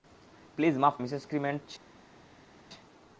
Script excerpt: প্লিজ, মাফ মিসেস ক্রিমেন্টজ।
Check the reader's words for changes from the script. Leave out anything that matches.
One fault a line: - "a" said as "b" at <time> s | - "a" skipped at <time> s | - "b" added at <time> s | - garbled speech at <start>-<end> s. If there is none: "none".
none